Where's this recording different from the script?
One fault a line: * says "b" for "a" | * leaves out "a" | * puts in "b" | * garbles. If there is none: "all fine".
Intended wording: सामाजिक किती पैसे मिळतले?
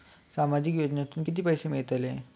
* puts in "योजनेतून"